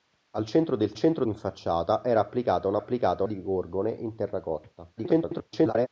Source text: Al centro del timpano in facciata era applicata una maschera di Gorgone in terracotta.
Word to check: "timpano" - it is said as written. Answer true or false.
false